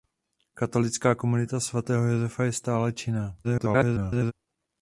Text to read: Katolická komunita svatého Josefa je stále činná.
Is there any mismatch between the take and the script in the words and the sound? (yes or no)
yes